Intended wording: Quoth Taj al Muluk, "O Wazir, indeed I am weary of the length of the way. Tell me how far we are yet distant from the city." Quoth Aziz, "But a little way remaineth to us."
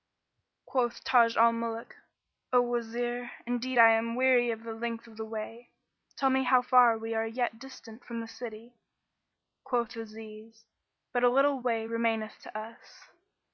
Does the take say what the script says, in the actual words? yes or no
yes